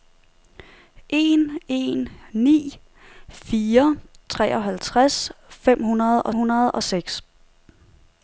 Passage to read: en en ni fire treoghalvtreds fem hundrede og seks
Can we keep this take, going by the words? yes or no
no